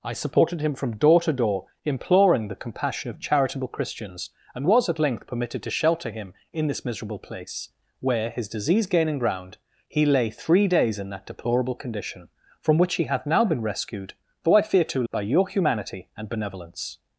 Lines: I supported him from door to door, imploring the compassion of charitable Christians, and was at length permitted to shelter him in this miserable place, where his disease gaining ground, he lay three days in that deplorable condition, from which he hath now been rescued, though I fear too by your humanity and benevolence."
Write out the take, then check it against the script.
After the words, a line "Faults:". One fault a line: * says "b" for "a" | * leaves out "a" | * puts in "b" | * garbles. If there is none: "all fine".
I supported him from door to door, imploring the compassion of charitable Christians, and was at length permitted to shelter him in this miserable place, where his disease gaining ground, he lay three days in that deplorable condition, from which he hath now been rescued, though I fear too by your humanity and benevolence."
Faults:
all fine